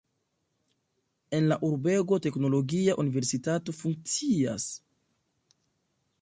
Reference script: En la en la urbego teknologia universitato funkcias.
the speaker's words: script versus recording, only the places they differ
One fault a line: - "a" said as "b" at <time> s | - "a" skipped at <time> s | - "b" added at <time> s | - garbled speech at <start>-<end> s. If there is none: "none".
- "en la" skipped at 1.6 s